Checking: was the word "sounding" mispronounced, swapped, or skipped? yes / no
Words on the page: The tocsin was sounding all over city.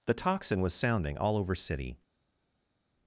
no